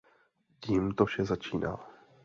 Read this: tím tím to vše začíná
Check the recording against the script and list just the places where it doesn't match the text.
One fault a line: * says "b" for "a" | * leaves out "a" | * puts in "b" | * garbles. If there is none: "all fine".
* leaves out "tím"